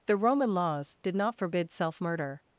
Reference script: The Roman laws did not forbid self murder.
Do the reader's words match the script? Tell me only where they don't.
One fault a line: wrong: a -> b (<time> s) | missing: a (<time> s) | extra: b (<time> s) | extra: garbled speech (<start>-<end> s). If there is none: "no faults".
no faults